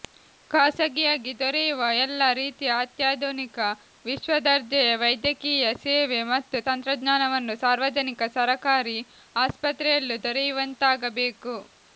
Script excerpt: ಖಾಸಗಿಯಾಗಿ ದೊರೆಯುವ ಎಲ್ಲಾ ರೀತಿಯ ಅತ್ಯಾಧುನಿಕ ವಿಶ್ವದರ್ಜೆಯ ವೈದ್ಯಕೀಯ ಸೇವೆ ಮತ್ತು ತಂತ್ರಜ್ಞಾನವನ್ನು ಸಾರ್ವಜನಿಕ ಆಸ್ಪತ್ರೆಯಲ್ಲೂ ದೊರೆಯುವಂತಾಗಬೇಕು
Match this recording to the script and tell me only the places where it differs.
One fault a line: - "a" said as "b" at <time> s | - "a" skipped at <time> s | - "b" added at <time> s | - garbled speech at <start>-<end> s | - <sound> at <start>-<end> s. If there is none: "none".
- "ಸರಕಾರಿ" added at 8.4 s